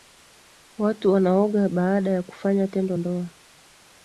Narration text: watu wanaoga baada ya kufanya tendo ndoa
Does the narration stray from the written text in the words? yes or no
no